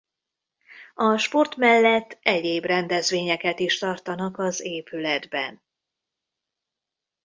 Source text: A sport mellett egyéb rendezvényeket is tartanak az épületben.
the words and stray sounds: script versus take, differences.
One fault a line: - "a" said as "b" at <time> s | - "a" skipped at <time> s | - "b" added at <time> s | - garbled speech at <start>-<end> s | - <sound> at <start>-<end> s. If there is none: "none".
none